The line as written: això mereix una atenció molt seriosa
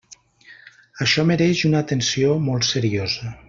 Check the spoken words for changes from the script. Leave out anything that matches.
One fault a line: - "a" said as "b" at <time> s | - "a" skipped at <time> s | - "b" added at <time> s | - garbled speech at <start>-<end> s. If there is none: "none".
none